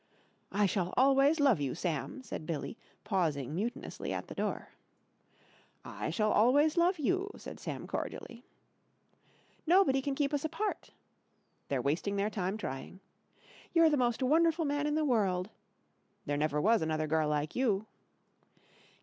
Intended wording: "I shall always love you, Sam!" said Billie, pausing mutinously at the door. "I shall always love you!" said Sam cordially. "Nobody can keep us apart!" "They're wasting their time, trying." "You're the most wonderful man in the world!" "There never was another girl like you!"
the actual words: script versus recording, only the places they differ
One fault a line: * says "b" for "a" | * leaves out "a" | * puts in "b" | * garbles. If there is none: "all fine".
all fine